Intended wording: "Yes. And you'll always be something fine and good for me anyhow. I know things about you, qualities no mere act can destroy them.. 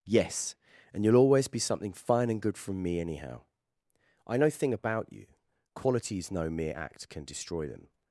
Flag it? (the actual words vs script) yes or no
yes